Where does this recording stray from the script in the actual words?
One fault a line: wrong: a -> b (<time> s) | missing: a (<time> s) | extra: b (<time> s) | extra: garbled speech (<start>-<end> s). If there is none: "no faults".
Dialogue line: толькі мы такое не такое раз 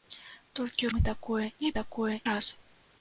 no faults